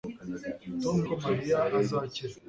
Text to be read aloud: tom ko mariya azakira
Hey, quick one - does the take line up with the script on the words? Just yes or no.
yes